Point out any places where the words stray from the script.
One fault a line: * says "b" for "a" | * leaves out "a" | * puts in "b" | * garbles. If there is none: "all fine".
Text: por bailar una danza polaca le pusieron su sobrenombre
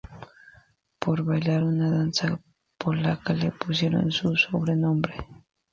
all fine